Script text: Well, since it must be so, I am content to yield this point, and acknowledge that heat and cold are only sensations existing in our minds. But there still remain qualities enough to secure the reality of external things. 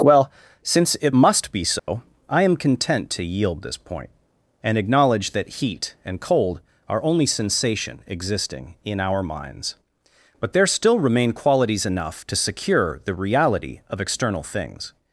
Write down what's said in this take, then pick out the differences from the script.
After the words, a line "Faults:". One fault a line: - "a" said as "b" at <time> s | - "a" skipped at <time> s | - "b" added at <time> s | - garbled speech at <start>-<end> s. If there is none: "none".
Well, since it must be so, I am content to yield this point, and acknowledge that heat and cold are only sensation existing in our minds. But there still remain qualities enough to secure the reality of external things.
Faults:
- "sensations" said as "sensation" at 7.3 s